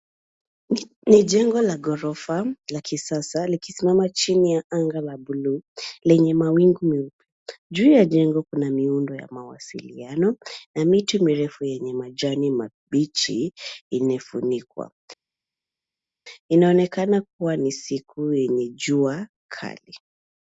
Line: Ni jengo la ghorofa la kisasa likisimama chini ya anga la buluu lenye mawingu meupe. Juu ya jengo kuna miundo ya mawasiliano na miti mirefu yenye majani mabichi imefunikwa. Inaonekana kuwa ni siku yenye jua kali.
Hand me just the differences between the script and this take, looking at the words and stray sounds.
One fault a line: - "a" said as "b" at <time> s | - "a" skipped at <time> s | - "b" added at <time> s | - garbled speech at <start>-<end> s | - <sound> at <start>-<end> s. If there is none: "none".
none